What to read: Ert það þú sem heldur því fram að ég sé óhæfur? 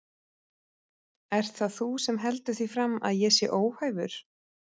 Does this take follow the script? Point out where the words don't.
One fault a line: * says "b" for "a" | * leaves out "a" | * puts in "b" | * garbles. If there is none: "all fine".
all fine